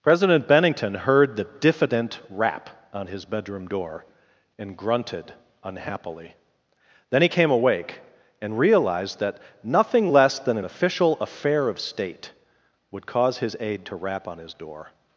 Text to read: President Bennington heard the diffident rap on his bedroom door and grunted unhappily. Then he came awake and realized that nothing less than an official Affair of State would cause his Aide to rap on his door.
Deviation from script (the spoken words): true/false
false